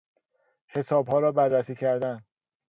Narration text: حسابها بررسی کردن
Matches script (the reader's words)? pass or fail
fail